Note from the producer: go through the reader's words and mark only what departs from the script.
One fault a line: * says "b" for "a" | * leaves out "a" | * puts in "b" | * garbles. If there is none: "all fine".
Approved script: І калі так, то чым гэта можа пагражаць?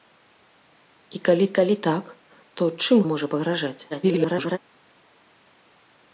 * puts in "калі"
* leaves out "гэта"
* garbles